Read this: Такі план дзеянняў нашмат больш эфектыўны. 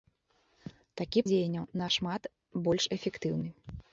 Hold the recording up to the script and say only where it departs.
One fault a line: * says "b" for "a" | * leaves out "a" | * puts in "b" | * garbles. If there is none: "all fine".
* leaves out "план"